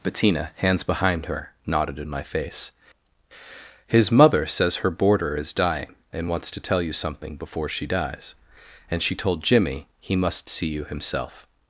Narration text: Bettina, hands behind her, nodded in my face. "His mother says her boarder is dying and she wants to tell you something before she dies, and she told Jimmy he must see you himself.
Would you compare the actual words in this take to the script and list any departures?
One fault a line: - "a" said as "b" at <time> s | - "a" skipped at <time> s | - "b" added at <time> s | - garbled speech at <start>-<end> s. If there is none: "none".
- "she" skipped at 6.3 s